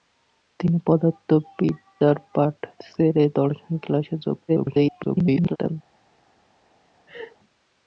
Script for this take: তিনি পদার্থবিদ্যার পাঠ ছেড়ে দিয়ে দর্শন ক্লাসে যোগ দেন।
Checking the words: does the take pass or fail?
fail